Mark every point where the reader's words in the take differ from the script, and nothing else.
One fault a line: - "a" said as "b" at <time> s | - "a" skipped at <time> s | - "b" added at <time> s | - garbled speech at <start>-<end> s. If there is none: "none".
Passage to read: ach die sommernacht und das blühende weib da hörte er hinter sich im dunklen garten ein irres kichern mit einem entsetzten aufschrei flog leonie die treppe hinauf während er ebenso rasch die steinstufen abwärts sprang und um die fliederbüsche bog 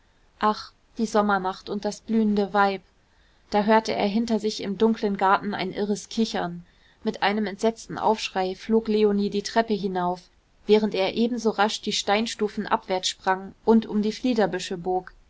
none